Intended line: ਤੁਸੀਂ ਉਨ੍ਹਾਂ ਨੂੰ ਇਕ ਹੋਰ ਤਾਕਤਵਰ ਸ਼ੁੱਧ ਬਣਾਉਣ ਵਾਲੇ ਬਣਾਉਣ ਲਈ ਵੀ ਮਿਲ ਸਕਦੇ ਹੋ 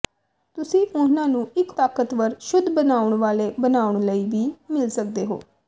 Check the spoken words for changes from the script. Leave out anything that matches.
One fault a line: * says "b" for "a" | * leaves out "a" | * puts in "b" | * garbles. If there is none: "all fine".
* leaves out "ਹੋਰ"